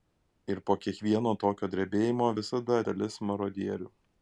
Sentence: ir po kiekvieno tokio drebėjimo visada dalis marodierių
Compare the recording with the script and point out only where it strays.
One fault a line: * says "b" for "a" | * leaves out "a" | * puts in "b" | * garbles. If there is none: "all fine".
all fine